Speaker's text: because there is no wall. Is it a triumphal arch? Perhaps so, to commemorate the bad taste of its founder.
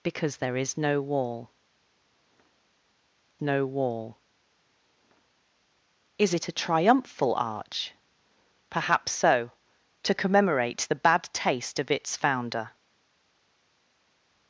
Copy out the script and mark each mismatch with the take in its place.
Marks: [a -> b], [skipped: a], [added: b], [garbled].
because there is no wall. [added: no wall] Is it a triumphal arch? Perhaps so, to commemorate the bad taste of its founder.